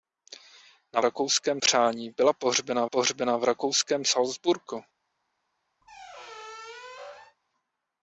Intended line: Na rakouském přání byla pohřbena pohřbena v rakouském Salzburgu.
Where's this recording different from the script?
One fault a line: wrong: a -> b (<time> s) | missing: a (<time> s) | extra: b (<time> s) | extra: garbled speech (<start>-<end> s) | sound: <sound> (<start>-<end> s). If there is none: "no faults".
sound: squeak (5.8-7.4 s)